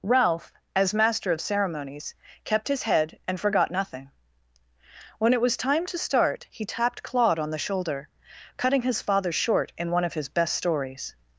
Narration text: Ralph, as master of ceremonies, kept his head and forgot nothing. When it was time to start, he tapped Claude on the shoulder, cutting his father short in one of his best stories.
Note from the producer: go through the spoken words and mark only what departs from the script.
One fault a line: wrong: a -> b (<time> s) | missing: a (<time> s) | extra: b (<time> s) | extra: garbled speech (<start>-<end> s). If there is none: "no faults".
no faults